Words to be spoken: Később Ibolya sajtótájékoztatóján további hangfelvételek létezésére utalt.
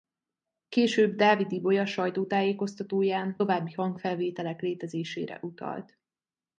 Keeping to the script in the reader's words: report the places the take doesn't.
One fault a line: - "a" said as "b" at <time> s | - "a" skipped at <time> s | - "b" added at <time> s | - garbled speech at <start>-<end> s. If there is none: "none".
- "Dávid" added at 1.1 s